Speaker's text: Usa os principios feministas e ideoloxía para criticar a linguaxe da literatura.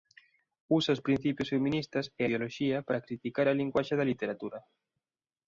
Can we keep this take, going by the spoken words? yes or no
yes